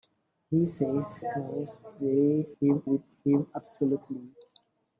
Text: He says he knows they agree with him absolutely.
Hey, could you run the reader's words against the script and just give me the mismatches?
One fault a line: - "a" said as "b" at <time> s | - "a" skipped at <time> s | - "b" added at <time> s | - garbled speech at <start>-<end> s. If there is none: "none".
- "he" skipped at 1.2 s
- "agree" said as "him" at 2.6 s